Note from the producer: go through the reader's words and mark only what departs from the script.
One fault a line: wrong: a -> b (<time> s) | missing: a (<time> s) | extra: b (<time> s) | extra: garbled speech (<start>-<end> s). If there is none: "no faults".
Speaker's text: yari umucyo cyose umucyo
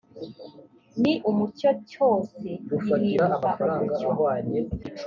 wrong: yari -> ni (1.0 s)
extra: gihinduka (2.7 s)